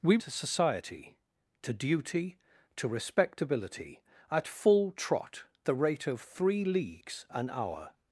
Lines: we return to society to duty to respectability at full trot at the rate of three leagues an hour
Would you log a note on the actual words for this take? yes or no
yes